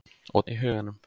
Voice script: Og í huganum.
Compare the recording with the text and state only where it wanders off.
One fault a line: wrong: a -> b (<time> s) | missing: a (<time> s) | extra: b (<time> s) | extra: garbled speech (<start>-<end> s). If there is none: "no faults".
no faults